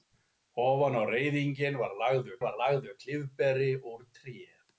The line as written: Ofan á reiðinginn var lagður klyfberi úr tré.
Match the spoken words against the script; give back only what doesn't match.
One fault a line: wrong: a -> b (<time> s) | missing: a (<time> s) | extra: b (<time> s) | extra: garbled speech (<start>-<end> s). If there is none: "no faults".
extra: var lagður (2.4 s)